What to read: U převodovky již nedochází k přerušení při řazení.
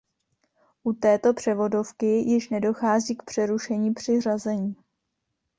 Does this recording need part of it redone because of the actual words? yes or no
yes